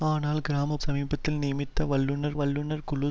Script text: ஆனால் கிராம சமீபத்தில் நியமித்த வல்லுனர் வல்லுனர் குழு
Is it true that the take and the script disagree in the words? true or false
false